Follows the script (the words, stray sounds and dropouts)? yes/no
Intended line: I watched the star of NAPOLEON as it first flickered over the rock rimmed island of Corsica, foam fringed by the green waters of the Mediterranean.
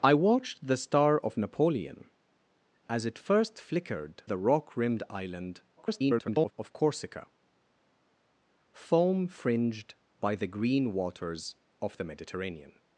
no